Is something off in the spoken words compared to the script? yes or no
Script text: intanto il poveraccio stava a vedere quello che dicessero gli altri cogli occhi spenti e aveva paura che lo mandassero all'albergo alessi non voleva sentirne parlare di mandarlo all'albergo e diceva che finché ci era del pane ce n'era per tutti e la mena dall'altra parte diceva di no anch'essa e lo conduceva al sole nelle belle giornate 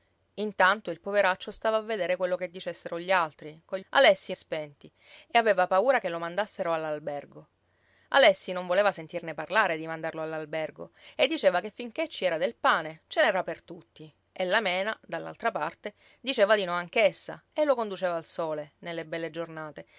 yes